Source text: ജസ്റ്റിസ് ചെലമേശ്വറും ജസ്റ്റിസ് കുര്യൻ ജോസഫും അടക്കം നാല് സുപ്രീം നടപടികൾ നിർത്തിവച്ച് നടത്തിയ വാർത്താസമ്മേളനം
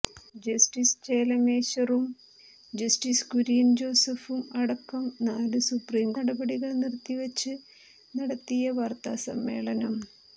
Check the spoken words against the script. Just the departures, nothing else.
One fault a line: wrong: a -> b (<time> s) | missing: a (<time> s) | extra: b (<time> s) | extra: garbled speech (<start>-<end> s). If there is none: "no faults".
no faults